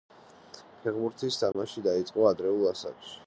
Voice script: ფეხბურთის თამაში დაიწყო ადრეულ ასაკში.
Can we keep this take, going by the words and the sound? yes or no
no